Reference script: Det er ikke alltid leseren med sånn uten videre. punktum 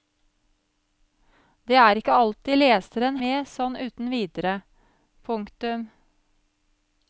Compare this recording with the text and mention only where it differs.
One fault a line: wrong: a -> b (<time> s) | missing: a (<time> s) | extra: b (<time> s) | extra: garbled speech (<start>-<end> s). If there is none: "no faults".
no faults